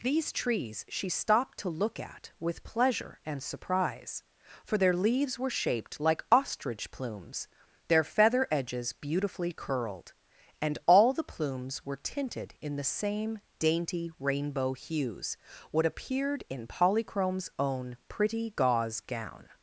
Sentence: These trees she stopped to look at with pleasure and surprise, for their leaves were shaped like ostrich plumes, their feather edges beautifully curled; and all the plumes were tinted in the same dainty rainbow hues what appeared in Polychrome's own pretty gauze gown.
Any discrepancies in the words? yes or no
no